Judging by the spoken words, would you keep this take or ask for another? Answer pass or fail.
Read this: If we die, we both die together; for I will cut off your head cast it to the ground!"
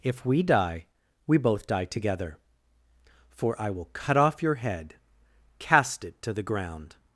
pass